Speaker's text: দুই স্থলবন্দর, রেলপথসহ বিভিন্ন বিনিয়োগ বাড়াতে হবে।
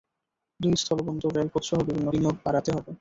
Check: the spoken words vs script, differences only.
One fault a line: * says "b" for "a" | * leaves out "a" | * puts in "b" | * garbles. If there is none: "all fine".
all fine